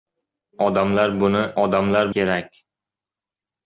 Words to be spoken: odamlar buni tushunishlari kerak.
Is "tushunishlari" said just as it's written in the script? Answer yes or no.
no